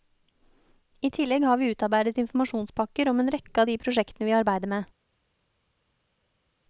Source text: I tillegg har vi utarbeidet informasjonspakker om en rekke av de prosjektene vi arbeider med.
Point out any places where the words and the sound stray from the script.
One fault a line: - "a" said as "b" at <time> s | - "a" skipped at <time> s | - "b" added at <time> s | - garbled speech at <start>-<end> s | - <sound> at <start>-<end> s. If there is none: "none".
none